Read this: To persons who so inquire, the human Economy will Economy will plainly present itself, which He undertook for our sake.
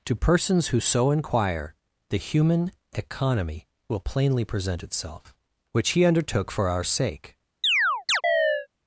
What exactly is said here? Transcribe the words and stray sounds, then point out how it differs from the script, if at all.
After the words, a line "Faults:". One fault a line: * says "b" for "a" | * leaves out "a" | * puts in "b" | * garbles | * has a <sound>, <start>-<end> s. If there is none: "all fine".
To persons who so inquire, the human Economy will plainly present itself, which He undertook for our sake.
Faults:
* leaves out "Economy will"
* has a chirp, 7.6-8.7 s